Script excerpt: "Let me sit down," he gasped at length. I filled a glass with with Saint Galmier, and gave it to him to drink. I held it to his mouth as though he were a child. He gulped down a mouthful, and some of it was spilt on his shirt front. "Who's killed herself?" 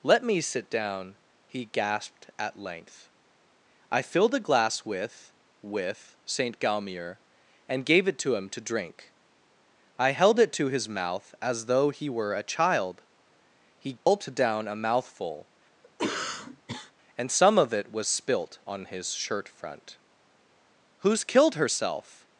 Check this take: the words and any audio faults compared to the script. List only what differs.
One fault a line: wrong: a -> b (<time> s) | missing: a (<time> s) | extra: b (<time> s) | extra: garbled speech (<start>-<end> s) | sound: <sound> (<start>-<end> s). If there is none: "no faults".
sound: dropout (14.0-14.1 s)
sound: cough (15.8-16.9 s)